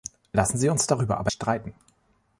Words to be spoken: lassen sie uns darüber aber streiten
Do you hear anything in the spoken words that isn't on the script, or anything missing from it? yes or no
no